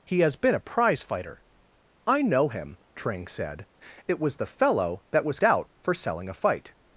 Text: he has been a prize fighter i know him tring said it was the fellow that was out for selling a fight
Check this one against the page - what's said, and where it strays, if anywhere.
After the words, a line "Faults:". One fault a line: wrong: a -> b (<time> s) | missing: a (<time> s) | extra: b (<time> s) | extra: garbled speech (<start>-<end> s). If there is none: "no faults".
he has been a prize fighter i know him tring said it was the fellow that was out for selling a fight
Faults:
no faults